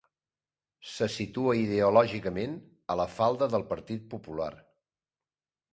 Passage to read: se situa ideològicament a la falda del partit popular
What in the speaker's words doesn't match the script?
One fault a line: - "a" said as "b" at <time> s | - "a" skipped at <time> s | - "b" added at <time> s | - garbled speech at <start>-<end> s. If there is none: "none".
none